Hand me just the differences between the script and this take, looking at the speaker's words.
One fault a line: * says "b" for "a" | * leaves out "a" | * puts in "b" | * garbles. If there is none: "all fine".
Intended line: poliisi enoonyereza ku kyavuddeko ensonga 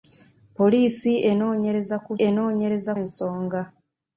* says "enoonyereza" for "kyavuddeko"